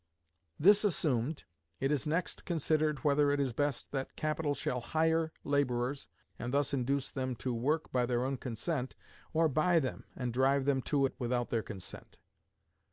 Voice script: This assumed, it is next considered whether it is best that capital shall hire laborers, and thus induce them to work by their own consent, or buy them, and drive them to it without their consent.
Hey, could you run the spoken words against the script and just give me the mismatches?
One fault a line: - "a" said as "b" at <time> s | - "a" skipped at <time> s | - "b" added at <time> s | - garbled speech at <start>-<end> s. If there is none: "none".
none